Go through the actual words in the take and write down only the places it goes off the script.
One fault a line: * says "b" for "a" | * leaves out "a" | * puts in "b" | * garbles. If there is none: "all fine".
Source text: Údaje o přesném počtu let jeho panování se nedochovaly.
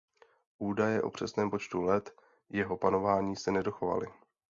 all fine